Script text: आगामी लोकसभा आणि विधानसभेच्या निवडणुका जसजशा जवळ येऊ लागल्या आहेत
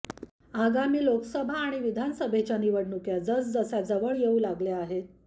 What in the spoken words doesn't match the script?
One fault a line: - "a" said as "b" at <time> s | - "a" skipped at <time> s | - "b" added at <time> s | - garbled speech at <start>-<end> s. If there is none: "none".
none